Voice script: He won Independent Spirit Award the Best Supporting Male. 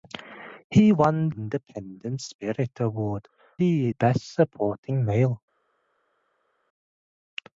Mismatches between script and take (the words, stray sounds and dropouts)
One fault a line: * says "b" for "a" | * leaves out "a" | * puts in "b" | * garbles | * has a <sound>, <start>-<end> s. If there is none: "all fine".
all fine